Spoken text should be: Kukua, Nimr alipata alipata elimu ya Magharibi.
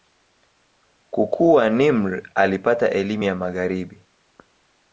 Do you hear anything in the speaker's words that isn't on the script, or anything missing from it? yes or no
yes